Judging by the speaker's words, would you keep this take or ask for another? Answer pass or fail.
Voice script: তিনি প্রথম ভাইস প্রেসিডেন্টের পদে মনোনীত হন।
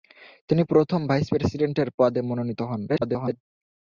fail